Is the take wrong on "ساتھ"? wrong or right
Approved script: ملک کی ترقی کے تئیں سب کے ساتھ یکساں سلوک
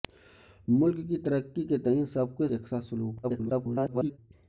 wrong